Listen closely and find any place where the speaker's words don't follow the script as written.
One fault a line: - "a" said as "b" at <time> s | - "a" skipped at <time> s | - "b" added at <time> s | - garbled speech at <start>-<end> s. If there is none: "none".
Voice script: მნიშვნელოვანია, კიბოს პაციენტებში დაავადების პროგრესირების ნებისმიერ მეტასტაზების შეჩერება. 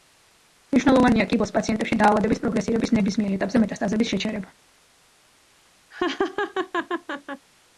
- "ეტაპზე" added at 3.4 s